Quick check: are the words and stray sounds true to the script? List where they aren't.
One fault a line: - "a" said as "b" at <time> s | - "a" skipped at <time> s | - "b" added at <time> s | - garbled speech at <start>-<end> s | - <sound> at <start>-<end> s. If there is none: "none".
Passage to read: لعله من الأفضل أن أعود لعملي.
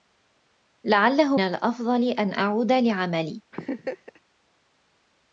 - "من" skipped at 1.4 s
- laugh at 3.5-4.2 s